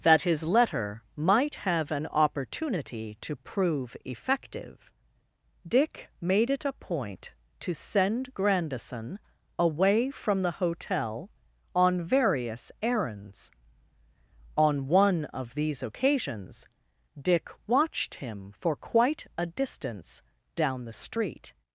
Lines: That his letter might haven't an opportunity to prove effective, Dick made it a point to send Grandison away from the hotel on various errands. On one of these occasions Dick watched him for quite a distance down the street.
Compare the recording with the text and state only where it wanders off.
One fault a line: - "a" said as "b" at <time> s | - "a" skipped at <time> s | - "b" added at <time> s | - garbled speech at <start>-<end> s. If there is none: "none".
- "haven't" said as "have" at 1.6 s